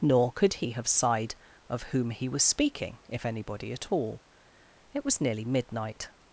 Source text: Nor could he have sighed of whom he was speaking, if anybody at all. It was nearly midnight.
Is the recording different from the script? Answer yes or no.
no